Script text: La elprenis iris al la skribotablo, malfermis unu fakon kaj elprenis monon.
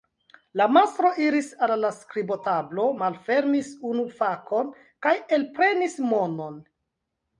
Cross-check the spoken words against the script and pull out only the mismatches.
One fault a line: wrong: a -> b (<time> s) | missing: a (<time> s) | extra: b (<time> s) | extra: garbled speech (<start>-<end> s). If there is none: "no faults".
wrong: elprenis -> mastro (0.8 s)